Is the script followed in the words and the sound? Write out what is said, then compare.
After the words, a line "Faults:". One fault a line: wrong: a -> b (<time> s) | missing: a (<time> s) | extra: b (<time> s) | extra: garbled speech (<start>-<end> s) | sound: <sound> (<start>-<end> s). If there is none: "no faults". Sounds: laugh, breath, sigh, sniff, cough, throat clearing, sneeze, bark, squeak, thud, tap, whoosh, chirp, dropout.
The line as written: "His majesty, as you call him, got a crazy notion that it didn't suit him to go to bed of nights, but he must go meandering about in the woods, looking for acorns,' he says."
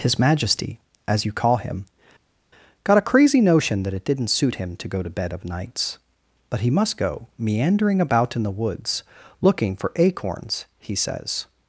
"His majesty, as you call him, got a crazy notion that it didn't suit him to go to bed of nights, but he must go meandering about in the woods, looking for acorns,' he says."
Faults:
no faults